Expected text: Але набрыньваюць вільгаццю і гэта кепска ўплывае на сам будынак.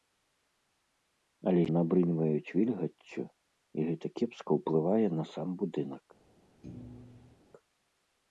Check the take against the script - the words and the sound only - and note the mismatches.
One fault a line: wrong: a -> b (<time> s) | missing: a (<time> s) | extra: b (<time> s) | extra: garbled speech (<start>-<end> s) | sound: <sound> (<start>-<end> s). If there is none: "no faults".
sound: thud (6.6-7.4 s)